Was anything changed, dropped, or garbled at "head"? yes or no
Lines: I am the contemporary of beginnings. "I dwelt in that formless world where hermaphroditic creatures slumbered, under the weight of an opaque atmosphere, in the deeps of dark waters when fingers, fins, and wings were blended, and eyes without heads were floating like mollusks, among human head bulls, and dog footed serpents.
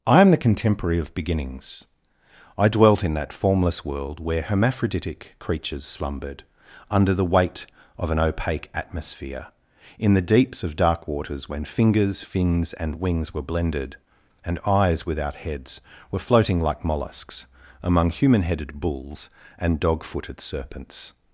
yes